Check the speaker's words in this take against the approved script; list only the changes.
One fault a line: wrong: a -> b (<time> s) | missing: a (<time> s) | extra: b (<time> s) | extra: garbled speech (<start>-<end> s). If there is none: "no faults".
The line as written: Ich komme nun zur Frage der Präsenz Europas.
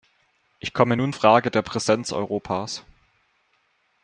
missing: zur (1.1 s)